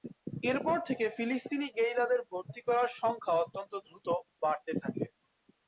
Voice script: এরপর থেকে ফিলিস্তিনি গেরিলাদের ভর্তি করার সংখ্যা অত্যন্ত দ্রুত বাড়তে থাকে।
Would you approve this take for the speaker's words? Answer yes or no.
yes